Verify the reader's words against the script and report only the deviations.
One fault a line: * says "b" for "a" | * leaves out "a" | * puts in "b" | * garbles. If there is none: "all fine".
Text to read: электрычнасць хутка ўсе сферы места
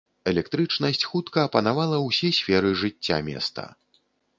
* puts in "апанавала"
* puts in "жыцця"